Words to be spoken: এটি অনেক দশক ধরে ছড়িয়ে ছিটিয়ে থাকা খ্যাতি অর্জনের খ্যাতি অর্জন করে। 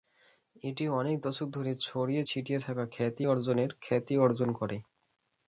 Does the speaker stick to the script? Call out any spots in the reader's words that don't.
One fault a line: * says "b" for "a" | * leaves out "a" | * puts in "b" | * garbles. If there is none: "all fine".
all fine